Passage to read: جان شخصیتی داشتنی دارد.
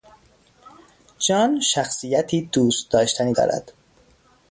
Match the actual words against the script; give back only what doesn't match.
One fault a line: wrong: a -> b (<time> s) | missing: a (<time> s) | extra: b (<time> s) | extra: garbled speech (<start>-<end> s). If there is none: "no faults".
extra: دوست (2.5 s)